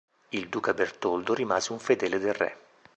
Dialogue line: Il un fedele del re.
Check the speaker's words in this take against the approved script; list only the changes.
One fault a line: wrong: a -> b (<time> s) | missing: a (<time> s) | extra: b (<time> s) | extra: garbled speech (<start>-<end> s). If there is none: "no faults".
extra: duca Bertoldo rimase (0.5 s)